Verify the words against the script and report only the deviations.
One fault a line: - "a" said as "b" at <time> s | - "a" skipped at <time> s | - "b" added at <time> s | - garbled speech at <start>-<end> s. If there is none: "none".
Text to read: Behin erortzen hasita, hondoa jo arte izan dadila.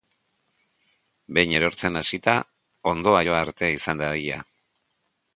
none